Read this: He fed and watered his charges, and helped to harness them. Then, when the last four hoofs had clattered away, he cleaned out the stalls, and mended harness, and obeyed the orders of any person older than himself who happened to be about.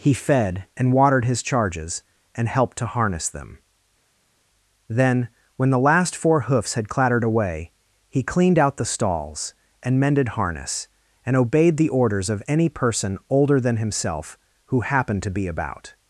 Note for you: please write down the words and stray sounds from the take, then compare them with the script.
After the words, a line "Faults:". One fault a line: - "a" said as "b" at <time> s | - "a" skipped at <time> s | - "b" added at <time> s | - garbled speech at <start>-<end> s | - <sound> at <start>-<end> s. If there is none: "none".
He fed and watered his charges, and helped to harness them. Then, when the last four hoofs had clattered away, he cleaned out the stalls, and mended harness, and obeyed the orders of any person older than himself who happened to be about.
Faults:
none